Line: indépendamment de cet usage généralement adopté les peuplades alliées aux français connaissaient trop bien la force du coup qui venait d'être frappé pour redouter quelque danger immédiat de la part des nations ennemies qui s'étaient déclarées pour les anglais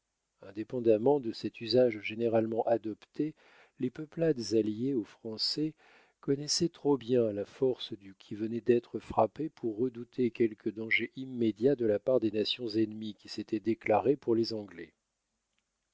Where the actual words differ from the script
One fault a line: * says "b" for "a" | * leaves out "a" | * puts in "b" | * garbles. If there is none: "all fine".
* leaves out "coup"